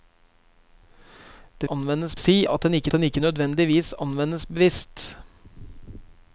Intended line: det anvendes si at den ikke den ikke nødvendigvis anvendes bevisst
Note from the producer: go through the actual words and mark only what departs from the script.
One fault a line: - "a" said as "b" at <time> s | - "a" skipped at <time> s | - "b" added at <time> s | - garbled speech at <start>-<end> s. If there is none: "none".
none